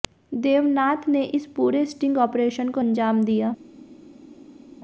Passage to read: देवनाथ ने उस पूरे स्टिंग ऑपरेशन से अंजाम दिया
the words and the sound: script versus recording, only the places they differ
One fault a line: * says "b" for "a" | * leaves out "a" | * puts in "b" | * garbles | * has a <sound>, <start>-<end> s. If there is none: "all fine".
* says "इस" for "उस"
* says "को" for "से"